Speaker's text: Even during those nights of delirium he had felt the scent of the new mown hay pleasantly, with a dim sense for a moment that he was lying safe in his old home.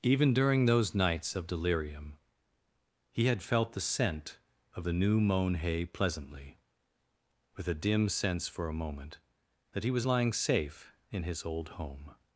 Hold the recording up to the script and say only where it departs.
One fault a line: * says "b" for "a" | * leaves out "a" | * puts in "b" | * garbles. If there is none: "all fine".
all fine